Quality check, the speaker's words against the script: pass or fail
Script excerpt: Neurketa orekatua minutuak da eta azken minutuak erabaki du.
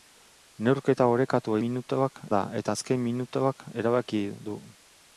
pass